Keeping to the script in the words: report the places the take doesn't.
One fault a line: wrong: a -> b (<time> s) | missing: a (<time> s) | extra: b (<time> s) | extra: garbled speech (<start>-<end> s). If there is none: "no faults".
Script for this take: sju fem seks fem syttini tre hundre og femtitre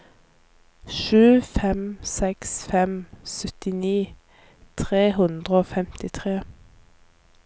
no faults